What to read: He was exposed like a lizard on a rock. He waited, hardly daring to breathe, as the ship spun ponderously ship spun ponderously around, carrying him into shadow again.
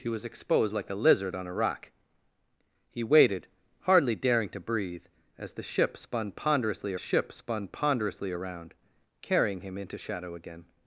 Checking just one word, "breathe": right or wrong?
right